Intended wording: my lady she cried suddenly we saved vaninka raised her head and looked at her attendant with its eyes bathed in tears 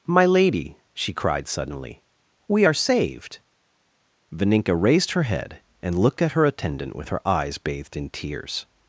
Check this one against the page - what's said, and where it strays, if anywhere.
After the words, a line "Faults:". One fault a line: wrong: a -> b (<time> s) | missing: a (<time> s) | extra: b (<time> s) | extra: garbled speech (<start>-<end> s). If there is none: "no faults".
my lady she cried suddenly we are saved vaninka raised her head and looked at her attendant with her eyes bathed in tears
Faults:
extra: are (2.6 s)
wrong: its -> her (7.1 s)